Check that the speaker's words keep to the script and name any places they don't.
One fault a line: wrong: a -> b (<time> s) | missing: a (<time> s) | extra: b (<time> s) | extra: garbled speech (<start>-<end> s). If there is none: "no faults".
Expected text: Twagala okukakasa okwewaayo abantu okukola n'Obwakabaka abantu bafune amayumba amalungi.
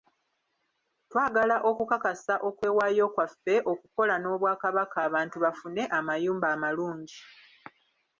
wrong: abantu -> kwaffe (3.1 s)